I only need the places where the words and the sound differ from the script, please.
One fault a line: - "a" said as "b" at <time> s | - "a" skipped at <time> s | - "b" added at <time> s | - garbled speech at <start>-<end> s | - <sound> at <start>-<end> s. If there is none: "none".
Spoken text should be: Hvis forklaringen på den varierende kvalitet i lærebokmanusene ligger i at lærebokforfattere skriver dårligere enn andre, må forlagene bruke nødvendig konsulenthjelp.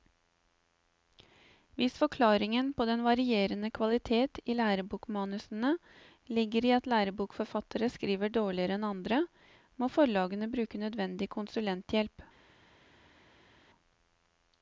none